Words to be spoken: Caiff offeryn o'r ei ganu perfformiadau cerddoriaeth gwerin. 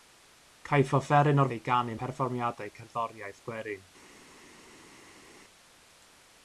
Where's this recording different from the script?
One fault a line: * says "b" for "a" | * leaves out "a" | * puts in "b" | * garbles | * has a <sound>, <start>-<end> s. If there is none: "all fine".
all fine